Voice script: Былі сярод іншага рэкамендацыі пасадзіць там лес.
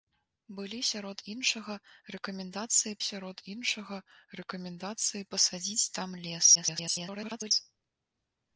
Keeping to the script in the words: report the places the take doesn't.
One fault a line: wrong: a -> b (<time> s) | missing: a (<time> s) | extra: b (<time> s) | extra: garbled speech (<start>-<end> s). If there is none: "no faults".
extra: сярод іншага рэкамендацыі (3.1 s)
extra: garbled speech (6.5-7.5 s)